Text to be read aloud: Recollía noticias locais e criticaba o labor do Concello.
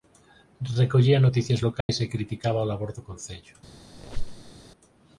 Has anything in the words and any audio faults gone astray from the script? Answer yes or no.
yes